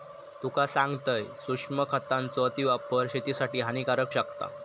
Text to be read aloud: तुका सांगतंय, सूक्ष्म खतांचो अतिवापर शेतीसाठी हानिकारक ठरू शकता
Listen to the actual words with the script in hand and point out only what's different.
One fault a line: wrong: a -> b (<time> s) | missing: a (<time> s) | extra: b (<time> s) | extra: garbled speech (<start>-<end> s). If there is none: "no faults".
missing: ठरू (4.1 s)